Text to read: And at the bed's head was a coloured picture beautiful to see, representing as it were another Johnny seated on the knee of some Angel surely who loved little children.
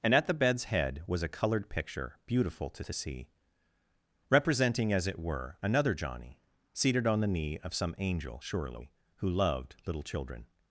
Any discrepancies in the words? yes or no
yes